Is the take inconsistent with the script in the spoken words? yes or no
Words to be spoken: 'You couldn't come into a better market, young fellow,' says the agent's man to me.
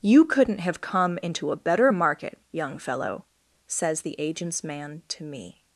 yes